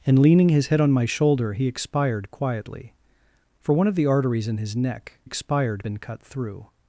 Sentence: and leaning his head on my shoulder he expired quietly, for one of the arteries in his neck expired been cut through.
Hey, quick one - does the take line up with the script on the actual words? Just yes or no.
yes